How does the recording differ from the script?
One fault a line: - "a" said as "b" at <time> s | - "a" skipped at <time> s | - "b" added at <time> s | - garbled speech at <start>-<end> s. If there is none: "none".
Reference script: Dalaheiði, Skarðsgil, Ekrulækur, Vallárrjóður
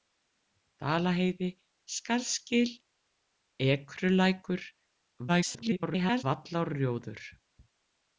- garbled speech at 5.3-6.2 s